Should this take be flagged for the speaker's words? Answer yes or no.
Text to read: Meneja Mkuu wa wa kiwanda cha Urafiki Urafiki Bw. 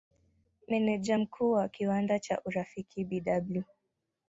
yes